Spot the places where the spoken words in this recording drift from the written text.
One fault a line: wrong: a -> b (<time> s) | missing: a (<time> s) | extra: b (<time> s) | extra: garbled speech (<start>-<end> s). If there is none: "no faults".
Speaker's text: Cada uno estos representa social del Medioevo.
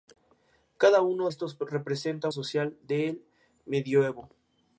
no faults